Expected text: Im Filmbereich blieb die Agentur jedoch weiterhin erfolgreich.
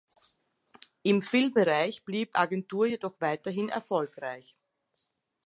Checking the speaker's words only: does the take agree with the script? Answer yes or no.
no